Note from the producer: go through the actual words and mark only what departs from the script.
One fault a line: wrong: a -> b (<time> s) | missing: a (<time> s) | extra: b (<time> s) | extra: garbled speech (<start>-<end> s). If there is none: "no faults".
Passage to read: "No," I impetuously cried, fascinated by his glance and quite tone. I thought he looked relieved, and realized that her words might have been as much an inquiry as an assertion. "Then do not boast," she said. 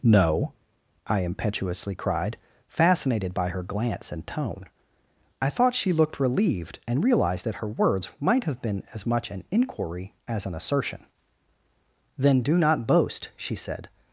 wrong: his -> her (3.5 s)
missing: quite (4.2 s)
wrong: he -> she (5.8 s)